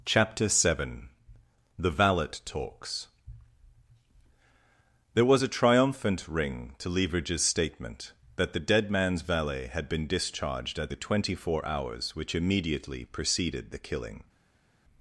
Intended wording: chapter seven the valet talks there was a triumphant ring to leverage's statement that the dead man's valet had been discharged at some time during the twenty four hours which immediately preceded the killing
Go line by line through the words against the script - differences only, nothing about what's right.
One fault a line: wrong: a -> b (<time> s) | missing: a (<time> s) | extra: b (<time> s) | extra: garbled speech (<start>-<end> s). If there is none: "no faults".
missing: some time during (10.9 s)